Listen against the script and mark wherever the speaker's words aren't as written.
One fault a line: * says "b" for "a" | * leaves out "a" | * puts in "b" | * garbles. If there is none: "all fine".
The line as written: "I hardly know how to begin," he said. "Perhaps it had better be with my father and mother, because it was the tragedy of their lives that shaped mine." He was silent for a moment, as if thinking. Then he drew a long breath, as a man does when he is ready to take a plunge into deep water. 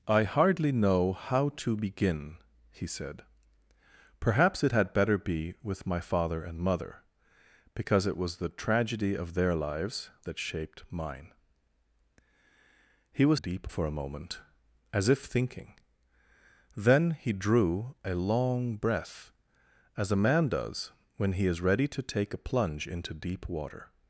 * says "deep" for "silent"